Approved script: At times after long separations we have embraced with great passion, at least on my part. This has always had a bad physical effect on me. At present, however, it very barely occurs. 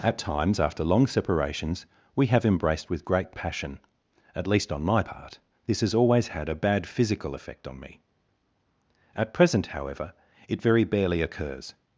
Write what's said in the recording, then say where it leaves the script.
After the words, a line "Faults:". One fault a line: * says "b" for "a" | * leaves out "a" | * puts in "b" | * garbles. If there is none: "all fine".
At times after long separations we have embraced with great passion, at least on my part. This has always had a bad physical effect on me. At present, however, it very barely occurs.
Faults:
all fine